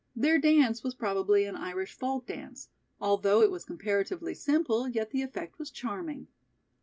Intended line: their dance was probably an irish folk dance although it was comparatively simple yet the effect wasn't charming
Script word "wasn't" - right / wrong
wrong